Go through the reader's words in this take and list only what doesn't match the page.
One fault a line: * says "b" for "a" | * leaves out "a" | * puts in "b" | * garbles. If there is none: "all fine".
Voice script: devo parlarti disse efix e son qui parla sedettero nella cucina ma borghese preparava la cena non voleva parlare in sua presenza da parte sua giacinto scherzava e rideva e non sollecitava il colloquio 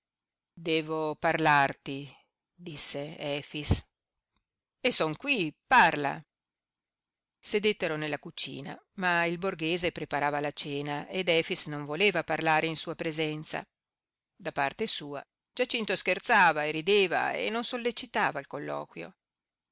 * puts in "il"
* puts in "ed efix"